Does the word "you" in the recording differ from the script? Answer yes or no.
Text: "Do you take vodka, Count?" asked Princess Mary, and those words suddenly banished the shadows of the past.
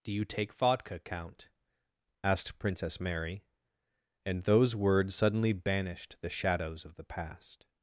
no